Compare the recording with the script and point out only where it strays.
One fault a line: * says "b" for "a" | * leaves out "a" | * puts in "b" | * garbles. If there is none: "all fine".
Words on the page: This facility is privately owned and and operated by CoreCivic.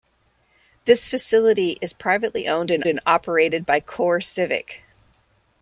all fine